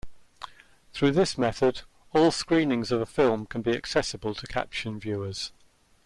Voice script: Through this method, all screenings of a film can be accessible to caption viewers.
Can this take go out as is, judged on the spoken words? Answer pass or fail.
pass